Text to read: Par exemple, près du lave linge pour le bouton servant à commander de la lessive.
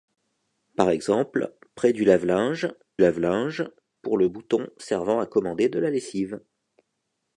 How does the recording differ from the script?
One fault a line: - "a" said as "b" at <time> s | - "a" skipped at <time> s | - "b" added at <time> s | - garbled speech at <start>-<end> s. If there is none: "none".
- "lave linge" added at 3.0 s